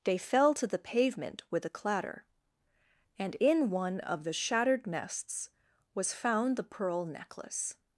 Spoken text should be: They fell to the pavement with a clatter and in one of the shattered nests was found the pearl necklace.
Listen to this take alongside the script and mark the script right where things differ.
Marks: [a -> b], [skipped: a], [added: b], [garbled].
They fell to the pavement with a clatter and in one of the shattered nests was found the pearl necklace.